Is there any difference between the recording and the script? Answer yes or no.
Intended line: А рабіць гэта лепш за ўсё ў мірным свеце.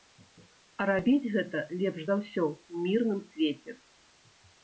no